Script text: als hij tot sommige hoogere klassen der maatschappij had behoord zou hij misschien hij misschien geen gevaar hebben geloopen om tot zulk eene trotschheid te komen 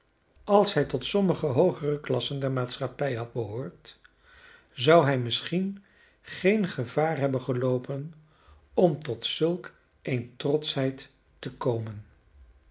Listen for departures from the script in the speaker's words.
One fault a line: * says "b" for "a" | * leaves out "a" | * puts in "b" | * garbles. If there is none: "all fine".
* leaves out "hij misschien"